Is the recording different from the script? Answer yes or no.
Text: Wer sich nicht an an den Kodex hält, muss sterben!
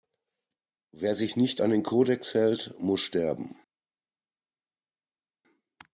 yes